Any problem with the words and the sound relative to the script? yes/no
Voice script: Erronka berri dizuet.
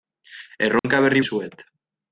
yes